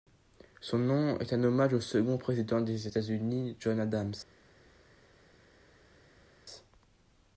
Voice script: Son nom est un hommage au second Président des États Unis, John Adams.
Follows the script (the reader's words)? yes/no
yes